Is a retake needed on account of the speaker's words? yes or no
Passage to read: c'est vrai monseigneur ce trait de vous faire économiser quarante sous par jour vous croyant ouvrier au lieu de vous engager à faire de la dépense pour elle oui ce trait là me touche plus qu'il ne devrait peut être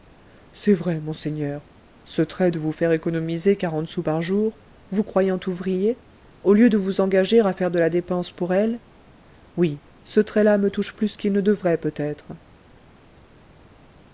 no